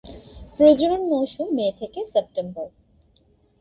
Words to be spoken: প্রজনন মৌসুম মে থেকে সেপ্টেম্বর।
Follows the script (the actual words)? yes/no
yes